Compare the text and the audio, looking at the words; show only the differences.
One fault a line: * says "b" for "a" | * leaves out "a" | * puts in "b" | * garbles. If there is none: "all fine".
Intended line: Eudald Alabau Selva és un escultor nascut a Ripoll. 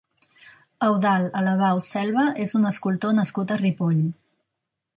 all fine